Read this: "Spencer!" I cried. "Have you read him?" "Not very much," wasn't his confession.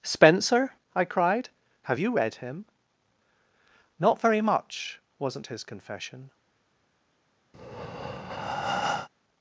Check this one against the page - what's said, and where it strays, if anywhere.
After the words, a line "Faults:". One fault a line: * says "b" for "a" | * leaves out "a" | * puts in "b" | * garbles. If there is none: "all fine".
"Spencer!" I cried. "Have you read him?" "Not very much," wasn't his confession.
Faults:
all fine